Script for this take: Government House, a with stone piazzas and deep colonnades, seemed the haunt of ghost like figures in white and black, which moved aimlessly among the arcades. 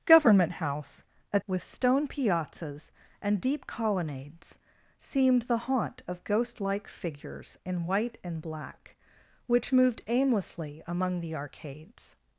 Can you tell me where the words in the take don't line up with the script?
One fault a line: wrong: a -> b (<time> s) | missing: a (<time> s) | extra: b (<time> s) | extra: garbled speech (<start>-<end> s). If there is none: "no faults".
no faults